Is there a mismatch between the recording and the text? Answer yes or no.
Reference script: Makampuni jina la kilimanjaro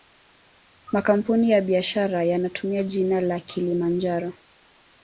yes